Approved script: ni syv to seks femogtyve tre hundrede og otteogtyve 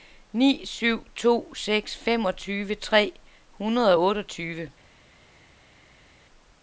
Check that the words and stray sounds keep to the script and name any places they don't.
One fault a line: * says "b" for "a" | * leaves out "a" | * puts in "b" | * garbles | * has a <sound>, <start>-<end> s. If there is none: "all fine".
all fine